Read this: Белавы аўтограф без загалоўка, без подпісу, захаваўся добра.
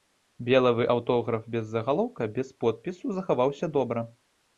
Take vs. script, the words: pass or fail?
pass